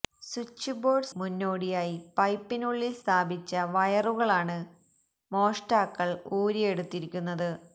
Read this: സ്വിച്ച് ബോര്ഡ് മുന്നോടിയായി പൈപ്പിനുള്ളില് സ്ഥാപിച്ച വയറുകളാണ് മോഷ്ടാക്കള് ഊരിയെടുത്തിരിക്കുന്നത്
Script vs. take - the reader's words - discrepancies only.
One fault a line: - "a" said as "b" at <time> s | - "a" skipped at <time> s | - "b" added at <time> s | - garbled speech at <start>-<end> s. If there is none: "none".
none